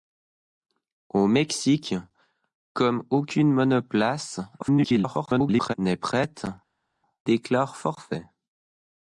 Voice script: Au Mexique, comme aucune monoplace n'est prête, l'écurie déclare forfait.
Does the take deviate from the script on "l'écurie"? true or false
true